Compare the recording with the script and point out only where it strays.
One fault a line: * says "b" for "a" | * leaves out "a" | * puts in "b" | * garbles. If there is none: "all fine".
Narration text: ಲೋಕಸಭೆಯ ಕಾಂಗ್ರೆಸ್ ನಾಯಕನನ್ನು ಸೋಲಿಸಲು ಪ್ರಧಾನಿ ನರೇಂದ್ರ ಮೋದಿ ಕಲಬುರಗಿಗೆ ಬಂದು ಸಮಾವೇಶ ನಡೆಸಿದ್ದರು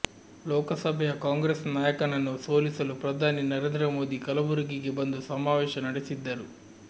all fine